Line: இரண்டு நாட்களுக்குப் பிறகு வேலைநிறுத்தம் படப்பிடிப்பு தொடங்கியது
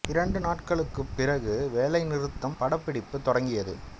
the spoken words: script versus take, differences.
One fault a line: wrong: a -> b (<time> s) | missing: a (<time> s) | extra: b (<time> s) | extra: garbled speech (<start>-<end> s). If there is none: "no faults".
no faults